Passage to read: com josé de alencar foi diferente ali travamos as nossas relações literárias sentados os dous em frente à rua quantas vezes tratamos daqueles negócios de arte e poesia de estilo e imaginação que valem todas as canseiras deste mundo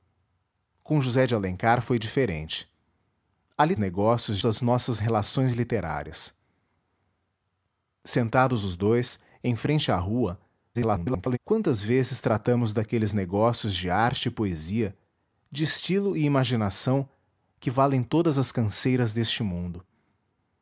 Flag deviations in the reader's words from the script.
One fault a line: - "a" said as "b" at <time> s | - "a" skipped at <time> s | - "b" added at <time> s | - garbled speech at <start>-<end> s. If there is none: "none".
- "travamos" said as "negócios" at 3.8 s
- garbled speech at 10.7-11.4 s